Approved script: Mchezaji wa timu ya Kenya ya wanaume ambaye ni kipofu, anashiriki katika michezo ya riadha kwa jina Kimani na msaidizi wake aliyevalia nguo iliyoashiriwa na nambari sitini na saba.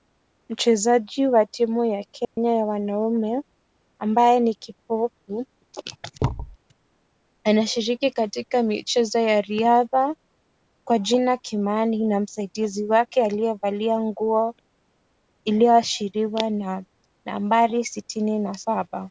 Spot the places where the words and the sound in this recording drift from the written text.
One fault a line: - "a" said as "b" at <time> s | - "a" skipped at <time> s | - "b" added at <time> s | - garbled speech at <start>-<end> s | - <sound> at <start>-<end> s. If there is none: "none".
- dropout at 2.2-2.4 s
- thud at 6.2-6.6 s